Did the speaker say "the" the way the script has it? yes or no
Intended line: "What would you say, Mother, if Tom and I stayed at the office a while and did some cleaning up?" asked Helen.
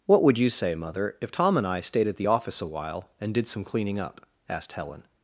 yes